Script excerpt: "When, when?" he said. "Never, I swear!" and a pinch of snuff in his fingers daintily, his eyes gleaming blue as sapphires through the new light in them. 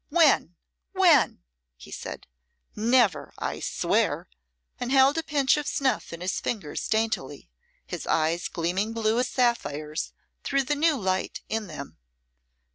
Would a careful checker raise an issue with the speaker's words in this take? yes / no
yes